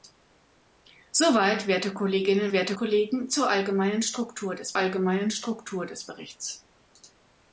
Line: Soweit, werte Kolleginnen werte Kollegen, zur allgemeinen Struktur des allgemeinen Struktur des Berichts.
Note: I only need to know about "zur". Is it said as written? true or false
true